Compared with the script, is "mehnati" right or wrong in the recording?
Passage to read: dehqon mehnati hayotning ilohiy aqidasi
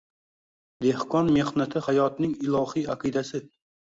right